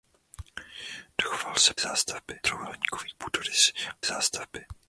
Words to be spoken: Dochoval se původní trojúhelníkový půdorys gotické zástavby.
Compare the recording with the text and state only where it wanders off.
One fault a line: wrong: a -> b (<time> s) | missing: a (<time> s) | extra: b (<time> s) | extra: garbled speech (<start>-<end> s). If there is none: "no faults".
wrong: původní -> zástavby (1.8 s)
missing: gotické (3.7 s)